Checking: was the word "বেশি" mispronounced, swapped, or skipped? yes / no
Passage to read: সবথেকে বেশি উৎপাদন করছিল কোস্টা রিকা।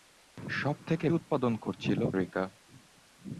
yes